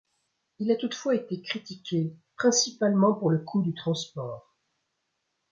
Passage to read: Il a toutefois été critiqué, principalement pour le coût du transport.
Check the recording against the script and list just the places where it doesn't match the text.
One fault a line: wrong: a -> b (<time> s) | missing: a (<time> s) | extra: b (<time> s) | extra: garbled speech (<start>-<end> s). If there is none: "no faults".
no faults